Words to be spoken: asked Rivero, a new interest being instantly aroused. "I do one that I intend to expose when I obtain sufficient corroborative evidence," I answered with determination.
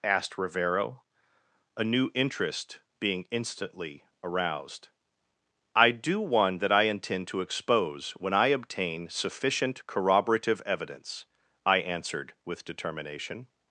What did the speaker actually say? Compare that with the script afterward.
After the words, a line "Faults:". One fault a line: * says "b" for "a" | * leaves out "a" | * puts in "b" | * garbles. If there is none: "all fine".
asked Rivero, a new interest being instantly aroused. "I do one that I intend to expose when I obtain sufficient corroborative evidence," I answered with determination.
Faults:
all fine